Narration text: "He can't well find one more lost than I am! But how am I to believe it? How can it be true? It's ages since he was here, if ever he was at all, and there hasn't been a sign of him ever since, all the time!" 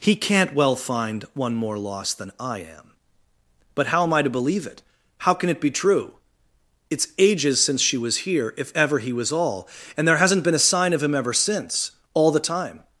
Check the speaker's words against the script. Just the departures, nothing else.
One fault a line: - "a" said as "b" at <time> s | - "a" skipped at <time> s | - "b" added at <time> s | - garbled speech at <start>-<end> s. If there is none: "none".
- "he" said as "she" at 7.8 s
- "at" skipped at 9.3 s